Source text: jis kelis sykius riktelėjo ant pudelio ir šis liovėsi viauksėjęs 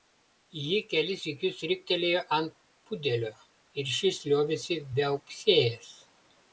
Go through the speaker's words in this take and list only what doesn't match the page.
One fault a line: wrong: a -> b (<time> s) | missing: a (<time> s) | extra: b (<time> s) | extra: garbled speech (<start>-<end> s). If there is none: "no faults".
wrong: jis -> ji (0.7 s)